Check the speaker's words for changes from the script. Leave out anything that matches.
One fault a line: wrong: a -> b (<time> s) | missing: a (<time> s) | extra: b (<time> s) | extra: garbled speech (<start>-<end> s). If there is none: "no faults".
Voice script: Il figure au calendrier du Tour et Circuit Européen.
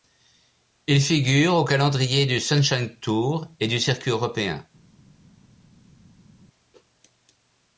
extra: Sunshine (2.4 s)
extra: du (3.7 s)